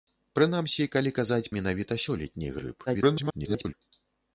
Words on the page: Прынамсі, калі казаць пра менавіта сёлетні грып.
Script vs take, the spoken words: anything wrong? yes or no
yes